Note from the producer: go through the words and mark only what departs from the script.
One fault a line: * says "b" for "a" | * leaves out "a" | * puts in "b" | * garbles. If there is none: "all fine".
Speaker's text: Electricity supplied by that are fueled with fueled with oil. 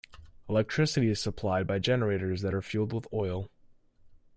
* puts in "is"
* puts in "generators"
* leaves out "fueled with"